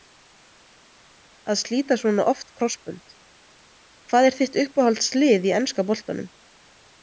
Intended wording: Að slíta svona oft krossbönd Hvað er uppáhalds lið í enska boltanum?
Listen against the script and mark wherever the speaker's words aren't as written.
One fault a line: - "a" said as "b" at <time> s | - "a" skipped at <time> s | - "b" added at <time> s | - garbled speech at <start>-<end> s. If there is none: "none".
- "þitt" added at 4.4 s